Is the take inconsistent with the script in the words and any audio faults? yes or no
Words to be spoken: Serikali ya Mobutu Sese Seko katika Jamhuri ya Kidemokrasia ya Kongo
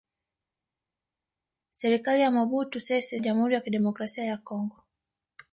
yes